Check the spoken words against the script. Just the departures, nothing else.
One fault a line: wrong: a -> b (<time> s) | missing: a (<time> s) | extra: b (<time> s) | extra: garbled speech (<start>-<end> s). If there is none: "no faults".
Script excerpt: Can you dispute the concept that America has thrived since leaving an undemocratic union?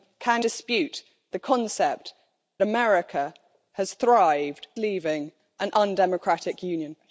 missing: you (0.5 s)
missing: that (2.1 s)
missing: since (4.7 s)